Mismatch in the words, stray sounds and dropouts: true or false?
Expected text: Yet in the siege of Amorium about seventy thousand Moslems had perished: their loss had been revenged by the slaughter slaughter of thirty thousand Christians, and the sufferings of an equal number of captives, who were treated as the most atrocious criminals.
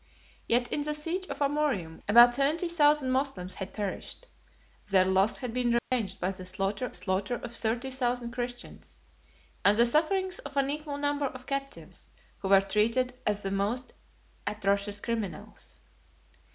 true